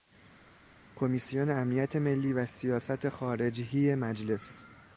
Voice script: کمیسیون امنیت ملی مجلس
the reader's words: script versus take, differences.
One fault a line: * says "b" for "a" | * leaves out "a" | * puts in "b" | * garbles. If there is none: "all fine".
* puts in "و سیاست خارجهی"